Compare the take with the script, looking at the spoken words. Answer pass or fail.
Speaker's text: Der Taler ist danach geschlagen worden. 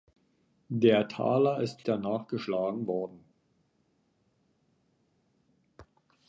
pass